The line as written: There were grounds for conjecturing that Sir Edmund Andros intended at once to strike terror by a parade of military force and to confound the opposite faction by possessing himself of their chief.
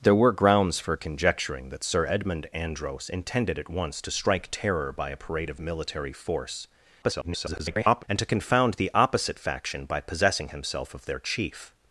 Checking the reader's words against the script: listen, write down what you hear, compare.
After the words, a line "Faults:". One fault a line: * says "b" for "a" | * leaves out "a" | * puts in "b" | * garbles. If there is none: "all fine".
There were grounds for conjecturing that Sir Edmund Andros intended at once to strike terror by a parade of military force [garbled] and to confound the opposite faction by possessing himself of their chief.
Faults:
* garbles